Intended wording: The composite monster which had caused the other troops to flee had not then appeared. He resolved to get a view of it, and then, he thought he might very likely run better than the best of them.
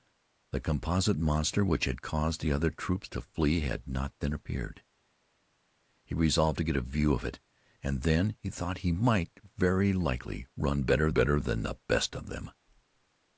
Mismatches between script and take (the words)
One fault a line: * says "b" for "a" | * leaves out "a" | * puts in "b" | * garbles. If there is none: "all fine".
* puts in "better"